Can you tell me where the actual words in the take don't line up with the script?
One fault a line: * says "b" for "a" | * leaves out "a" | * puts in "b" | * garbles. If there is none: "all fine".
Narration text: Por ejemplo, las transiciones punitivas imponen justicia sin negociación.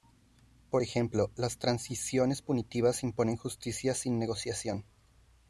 all fine